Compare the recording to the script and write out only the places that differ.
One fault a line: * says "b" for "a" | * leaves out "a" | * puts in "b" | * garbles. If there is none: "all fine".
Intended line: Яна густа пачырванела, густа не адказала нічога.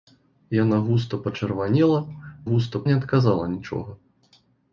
all fine